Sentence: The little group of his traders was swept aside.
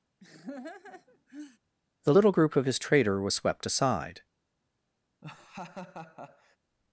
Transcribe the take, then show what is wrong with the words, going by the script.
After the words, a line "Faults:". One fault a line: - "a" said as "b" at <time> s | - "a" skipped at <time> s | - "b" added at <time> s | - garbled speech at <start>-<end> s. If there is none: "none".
The little group of his trader was swept aside.
Faults:
- "traders" said as "trader" at 2.8 s